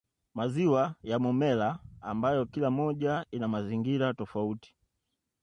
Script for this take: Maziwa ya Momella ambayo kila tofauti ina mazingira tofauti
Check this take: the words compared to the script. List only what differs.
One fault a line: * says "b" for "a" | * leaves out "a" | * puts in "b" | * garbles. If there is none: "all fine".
* says "moja" for "tofauti"